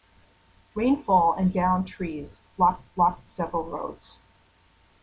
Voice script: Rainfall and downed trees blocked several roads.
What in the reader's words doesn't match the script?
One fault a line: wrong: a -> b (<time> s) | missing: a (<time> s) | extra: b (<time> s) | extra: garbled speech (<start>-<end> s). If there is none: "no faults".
extra: blocked (3.0 s)